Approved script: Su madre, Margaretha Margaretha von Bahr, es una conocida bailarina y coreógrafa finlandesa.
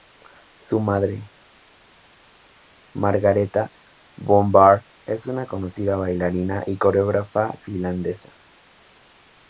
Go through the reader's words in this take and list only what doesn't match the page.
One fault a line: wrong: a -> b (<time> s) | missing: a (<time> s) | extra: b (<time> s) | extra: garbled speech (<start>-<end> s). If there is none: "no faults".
missing: Margaretha (3.7 s)